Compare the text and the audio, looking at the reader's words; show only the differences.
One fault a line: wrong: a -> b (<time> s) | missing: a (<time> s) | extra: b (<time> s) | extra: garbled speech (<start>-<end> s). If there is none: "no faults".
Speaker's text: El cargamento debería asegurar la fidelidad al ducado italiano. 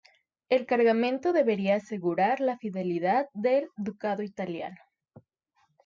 wrong: al -> del (3.3 s)